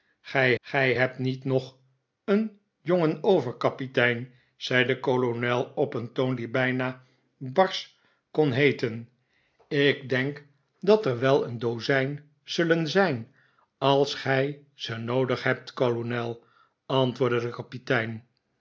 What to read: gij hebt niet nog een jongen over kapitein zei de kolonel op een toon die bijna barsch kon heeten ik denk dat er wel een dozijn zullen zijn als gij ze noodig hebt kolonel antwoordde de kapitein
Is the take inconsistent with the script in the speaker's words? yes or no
yes